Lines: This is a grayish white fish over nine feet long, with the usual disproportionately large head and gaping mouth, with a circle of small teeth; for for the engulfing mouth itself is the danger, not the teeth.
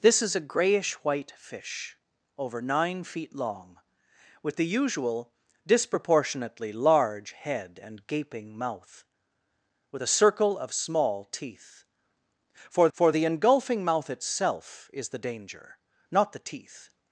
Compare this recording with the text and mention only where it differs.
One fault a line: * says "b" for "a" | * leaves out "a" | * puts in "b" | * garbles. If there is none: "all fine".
all fine